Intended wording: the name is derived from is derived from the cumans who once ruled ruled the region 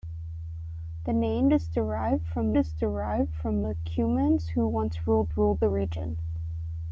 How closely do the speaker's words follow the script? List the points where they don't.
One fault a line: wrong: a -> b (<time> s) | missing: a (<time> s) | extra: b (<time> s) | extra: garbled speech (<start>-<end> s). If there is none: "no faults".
no faults